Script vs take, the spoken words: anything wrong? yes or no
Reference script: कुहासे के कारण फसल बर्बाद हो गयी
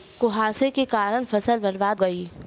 yes